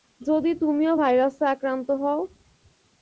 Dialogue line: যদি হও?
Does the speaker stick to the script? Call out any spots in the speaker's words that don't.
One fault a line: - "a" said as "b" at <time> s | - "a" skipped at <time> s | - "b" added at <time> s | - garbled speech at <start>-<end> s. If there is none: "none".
- "তুমিও ভাইরাসে আক্রান্ত" added at 0.6 s